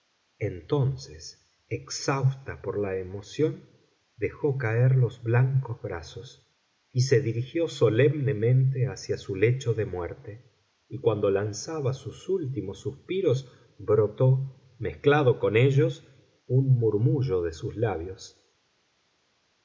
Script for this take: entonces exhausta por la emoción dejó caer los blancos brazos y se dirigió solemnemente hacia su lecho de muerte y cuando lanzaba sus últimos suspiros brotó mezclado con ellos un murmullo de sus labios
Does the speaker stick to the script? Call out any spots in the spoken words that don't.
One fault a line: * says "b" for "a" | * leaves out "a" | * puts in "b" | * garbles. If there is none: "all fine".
all fine